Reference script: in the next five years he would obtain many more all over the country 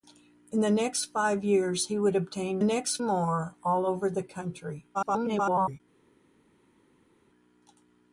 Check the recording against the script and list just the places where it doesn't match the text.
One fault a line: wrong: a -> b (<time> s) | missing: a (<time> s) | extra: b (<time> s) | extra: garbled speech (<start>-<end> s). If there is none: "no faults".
wrong: many -> next (2.6 s)
extra: garbled speech (4.9-5.8 s)